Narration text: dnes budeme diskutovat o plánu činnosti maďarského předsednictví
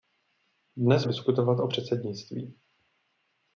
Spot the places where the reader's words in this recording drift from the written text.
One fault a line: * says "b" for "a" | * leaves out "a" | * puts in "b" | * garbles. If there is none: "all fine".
* leaves out "budeme"
* leaves out "plánu činnosti maďarského"